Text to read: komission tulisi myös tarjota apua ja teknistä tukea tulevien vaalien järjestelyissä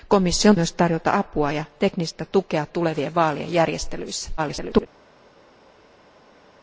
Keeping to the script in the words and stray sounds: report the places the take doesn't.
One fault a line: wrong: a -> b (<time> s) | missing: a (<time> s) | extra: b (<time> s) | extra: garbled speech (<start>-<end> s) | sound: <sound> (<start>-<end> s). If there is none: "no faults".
missing: tulisi (0.6 s)
extra: garbled speech (4.4-4.9 s)